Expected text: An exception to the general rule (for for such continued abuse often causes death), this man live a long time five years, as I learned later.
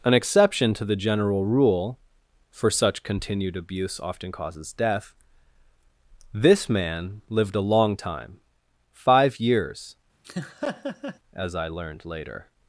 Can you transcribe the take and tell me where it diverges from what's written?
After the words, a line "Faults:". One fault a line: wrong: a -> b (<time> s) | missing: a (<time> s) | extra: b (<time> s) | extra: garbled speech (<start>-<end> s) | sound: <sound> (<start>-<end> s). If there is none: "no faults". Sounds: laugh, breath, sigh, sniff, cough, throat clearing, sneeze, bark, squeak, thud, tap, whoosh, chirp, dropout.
An exception to the general rule (for such continued abuse often causes death), this man lived a long time five years, as I learned later.
Faults:
missing: for (2.7 s)
wrong: live -> lived (7.3 s)
sound: laugh (10.2-11.2 s)